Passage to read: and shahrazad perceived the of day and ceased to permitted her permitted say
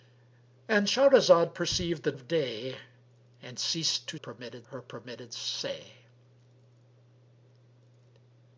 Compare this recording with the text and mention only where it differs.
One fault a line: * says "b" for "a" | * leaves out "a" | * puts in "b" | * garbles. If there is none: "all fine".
all fine